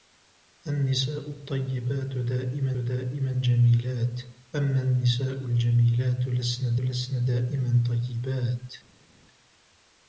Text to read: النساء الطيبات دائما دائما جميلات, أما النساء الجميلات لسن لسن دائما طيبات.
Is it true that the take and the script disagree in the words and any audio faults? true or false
false